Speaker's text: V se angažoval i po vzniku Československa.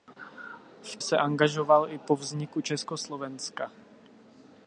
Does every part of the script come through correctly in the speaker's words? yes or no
yes